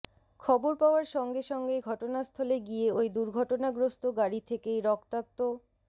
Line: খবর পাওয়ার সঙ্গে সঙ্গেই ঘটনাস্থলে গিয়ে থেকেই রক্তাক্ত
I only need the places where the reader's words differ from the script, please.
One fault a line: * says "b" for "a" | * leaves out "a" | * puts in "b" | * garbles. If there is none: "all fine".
* puts in "ওই দুর্ঘটনাগ্রস্ত গাড়ি"